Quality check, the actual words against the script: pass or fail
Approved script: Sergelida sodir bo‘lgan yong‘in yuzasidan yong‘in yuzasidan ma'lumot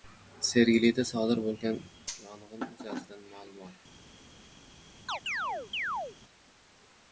fail